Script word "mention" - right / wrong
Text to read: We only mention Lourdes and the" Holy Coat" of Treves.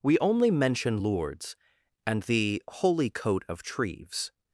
right